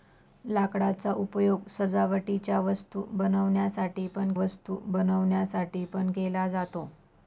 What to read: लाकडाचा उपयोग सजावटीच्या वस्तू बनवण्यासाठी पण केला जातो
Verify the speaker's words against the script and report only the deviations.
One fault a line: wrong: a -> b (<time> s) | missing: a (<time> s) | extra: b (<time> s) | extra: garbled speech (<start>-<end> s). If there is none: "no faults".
extra: वस्तू बनवण्यासाठी पण (4.3 s)